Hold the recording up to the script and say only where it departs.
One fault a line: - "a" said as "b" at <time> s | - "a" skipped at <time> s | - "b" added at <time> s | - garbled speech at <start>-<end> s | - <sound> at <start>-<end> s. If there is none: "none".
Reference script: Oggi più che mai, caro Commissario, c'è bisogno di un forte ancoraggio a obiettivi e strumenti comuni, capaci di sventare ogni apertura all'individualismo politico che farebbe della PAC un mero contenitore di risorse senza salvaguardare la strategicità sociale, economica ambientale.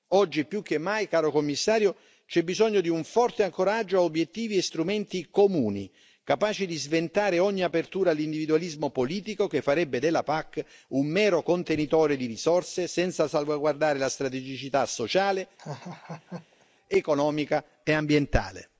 - laugh at 15.6-16.7 s
- "e" added at 17.8 s